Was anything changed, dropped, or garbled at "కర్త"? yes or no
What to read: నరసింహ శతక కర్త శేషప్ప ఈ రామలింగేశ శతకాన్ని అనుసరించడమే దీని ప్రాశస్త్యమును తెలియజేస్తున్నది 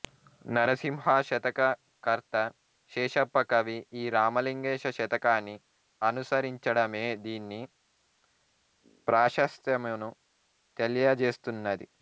no